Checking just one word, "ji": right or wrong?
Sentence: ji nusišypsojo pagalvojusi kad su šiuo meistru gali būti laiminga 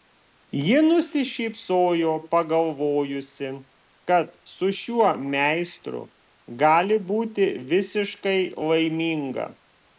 right